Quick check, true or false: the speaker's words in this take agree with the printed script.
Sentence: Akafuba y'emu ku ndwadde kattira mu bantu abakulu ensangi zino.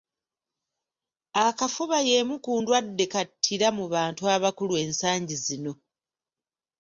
true